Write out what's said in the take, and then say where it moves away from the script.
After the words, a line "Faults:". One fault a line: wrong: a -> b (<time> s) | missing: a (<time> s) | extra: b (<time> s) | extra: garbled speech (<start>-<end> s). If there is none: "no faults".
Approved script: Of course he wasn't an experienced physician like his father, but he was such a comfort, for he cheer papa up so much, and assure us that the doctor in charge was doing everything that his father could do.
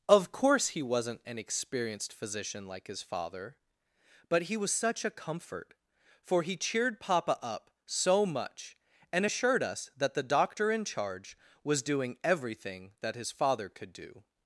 Of course he wasn't an experienced physician like his father, but he was such a comfort, for he cheered papa up so much, and assured us that the doctor in charge was doing everything that his father could do.
Faults:
wrong: cheer -> cheered (6.6 s)
wrong: assure -> assured (9.2 s)